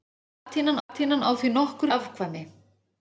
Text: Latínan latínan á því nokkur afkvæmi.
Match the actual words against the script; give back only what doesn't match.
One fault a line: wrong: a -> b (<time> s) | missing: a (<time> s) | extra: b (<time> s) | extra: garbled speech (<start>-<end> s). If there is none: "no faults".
no faults